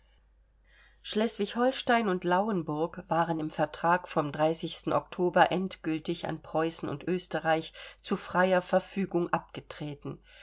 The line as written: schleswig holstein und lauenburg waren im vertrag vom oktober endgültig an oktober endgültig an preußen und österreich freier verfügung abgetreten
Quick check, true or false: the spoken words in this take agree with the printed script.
false